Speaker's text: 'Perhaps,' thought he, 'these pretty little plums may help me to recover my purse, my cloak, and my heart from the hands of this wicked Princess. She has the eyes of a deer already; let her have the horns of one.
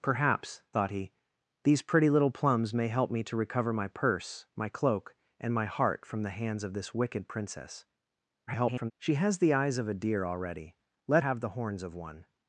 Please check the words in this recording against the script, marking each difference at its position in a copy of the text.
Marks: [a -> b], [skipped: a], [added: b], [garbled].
'Perhaps,' thought he, 'these pretty little plums may help me to recover my purse, my cloak, and my heart from the hands of this wicked Princess. [garbled] She has the eyes of a deer already; let [skipped: her] have the horns of one.